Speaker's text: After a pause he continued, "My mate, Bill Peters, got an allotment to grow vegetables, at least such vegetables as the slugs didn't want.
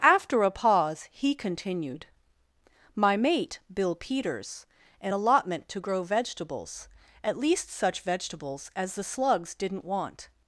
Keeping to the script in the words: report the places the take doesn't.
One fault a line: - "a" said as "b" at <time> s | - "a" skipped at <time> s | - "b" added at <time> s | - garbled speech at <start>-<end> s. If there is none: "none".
- "got" skipped at 4.7 s